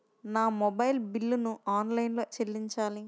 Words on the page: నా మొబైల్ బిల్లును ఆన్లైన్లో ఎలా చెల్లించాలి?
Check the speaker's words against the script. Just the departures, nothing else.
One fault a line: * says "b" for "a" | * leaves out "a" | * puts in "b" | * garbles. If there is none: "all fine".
* leaves out "ఎలా"